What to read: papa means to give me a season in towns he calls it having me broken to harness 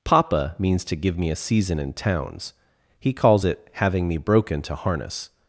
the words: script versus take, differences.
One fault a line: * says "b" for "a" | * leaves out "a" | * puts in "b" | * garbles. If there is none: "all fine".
all fine